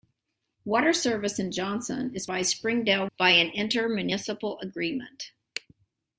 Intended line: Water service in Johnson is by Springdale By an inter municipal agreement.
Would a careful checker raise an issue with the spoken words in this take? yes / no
no